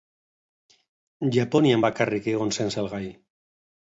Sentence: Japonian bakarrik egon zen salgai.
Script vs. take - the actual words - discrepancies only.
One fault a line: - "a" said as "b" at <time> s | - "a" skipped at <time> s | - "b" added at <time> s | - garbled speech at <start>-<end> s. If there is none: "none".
none